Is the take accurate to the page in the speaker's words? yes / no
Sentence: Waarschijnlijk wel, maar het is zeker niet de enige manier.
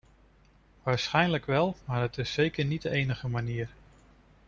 yes